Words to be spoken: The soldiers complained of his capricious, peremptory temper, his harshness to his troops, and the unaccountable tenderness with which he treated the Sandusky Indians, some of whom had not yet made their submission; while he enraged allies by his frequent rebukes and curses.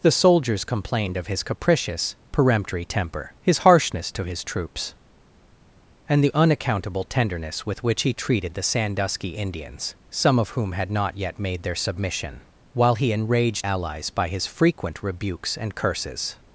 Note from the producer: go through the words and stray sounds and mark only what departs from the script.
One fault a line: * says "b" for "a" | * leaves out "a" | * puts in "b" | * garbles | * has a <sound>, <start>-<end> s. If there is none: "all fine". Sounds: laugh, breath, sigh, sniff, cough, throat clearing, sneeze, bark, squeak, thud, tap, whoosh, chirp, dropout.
all fine